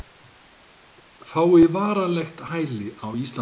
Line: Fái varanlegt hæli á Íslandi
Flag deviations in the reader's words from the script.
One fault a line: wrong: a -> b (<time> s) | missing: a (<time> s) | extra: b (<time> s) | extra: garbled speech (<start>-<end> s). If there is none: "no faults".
no faults